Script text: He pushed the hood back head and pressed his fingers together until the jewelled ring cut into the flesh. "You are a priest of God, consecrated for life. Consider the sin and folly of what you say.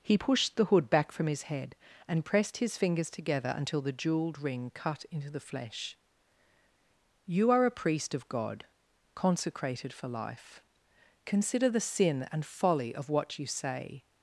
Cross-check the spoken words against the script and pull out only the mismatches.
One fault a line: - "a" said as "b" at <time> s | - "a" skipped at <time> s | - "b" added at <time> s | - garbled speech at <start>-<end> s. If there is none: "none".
- "from his" added at 1.1 s